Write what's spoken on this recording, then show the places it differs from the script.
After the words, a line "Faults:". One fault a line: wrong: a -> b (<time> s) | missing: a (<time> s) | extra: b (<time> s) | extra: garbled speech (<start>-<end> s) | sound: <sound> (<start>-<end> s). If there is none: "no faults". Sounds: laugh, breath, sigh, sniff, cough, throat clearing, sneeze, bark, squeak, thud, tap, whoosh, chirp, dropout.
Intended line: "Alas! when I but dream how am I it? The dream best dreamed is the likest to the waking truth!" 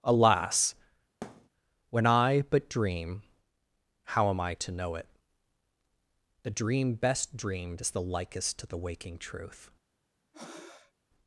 "Alas! when I but dream how am I to know it? The dream best dreamed is the likest to the waking truth!"
Faults:
sound: thud (1.2-1.5 s)
extra: to know (4.5 s)
sound: breath (10.3-10.9 s)